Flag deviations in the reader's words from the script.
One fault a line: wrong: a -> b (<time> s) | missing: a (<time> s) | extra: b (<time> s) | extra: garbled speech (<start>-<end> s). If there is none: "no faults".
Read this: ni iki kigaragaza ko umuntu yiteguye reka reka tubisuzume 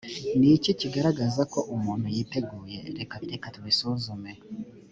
no faults